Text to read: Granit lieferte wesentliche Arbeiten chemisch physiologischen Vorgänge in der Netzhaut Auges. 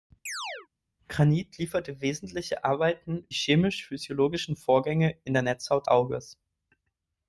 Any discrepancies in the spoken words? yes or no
no